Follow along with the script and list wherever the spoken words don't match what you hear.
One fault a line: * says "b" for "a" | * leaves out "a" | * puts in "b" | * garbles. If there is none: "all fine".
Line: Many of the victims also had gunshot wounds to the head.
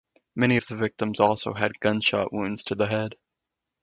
all fine